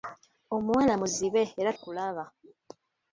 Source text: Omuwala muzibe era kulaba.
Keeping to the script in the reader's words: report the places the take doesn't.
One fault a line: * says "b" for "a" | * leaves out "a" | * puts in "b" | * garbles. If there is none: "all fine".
all fine